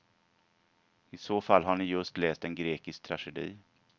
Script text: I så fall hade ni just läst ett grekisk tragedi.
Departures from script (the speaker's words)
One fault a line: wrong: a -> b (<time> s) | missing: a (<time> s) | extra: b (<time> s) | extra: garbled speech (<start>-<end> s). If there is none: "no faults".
wrong: hade -> har (1.6 s)
wrong: ett -> en (2.4 s)